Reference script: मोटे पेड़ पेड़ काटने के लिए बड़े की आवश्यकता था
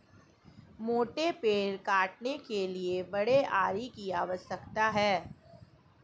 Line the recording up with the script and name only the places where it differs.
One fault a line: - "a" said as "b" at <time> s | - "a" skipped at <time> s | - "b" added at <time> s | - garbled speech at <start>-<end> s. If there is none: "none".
- "पेड़" skipped at 1.8 s
- "आरी" added at 3.5 s
- "था" said as "है" at 4.9 s